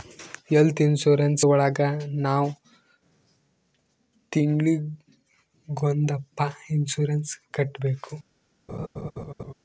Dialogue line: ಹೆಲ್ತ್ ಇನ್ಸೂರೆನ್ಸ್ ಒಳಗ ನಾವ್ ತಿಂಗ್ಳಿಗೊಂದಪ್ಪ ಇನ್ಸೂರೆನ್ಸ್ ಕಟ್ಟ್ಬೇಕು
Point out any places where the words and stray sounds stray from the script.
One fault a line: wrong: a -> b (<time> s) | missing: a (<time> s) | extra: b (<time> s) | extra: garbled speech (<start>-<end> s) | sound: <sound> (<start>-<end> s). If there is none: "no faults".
sound: laugh (8.7-9.5 s)